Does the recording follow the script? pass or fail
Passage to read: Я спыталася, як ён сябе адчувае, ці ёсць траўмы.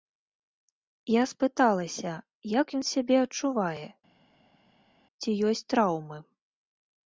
pass